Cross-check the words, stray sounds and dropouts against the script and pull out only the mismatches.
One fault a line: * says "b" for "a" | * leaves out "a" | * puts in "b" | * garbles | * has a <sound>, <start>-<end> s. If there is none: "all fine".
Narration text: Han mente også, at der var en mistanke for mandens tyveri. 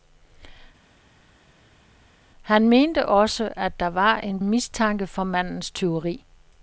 all fine